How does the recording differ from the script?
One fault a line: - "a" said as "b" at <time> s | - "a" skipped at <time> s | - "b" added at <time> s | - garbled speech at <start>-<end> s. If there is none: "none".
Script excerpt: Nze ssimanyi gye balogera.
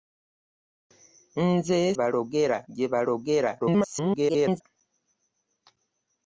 - "ssimanyi" said as "balogera" at 2.0 s
- garbled speech at 3.6-4.6 s